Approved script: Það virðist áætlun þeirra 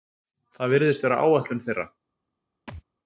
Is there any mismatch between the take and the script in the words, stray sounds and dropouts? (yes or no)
yes